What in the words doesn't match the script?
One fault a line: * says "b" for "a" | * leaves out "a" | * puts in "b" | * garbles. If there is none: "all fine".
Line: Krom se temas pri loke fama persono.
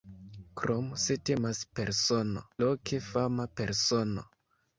* says "persono" for "pri"